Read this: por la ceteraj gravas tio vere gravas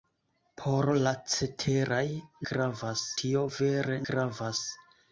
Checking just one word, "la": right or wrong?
right